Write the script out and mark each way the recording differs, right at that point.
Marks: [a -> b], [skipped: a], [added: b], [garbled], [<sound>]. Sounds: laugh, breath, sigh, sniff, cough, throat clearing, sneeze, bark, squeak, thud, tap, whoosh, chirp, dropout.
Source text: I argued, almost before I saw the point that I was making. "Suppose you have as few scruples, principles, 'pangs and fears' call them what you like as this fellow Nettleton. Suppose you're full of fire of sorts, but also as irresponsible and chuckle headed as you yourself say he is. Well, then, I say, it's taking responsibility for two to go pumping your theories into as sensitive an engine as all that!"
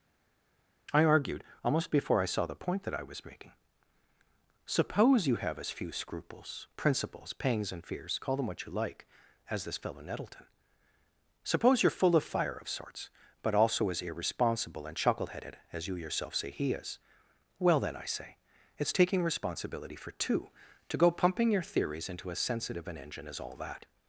I argued, almost before I saw the point that I was making. "Suppose you have as few scruples, principles, 'pangs and fears' call them what you like as this fellow Nettleton. Suppose you're full of fire of sorts, but also as irresponsible and chuckle headed as you yourself say he is. Well, then, I say, it's taking responsibility for two to go pumping your theories into as sensitive an engine as all that!"